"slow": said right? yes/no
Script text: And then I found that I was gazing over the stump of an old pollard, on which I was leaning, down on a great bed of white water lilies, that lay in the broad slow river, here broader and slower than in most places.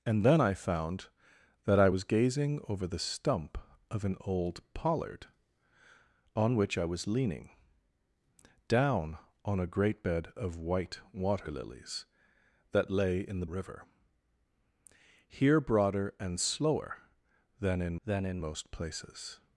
no